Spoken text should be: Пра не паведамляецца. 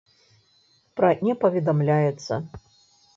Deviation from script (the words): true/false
false